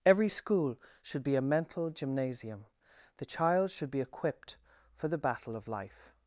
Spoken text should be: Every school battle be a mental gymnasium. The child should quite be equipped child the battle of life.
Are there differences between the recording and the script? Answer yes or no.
yes